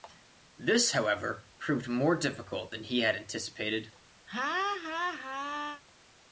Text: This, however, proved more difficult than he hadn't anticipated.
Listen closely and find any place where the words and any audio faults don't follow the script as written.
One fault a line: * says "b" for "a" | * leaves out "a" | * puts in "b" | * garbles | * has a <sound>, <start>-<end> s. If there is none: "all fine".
* says "had" for "hadn't"
* has a laugh, 4.3-5.8 s